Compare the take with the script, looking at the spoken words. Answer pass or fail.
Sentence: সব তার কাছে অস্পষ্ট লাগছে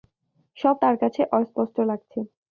pass